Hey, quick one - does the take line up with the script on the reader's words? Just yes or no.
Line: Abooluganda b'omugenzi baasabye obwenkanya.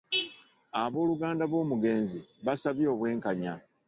yes